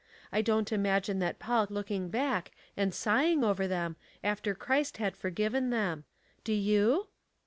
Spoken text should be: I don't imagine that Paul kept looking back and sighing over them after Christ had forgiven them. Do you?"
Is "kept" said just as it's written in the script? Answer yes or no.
no